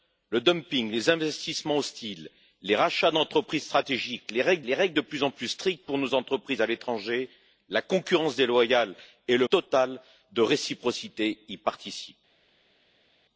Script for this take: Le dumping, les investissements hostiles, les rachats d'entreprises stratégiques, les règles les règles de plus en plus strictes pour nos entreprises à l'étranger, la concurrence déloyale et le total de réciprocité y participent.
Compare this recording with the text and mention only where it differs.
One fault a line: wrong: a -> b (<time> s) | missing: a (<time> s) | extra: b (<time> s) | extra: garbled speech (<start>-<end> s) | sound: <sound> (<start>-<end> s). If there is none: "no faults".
no faults